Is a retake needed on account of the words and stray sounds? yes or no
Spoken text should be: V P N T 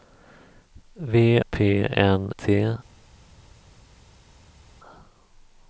no